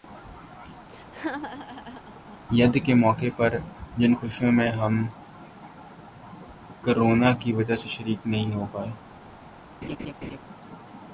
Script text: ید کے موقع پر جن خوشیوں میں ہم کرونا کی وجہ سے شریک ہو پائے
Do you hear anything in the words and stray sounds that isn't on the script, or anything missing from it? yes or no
yes